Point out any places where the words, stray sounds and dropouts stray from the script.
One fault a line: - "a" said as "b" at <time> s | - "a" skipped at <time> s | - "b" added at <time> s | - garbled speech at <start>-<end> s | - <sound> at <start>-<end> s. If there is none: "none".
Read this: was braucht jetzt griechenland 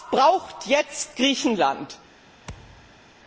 - thud at 2.4-3.0 s